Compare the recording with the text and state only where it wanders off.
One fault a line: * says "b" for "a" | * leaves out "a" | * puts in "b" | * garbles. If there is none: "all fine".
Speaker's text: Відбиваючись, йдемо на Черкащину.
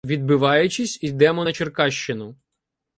all fine